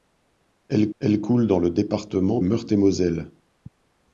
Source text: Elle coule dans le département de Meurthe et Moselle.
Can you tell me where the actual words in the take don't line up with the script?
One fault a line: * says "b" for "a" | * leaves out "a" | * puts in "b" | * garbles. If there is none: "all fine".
* puts in "elle"
* leaves out "de"